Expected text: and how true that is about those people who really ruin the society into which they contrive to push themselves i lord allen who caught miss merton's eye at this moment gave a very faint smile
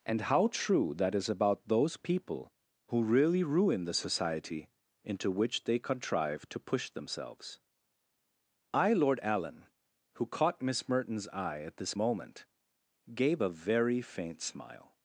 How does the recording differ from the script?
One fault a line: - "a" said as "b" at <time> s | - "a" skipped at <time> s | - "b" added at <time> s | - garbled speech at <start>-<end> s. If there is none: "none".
none